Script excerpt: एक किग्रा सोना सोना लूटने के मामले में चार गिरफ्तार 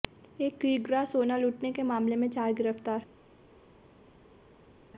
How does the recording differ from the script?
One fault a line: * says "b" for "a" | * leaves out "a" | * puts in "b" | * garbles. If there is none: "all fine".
* leaves out "सोना"